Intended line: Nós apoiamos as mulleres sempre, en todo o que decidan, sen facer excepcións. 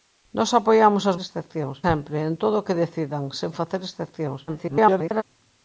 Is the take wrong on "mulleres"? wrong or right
wrong